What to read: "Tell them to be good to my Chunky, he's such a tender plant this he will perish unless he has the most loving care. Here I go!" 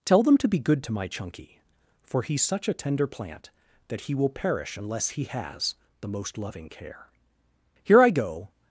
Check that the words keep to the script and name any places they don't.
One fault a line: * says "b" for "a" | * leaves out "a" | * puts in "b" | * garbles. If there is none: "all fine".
* puts in "for"
* says "that" for "this"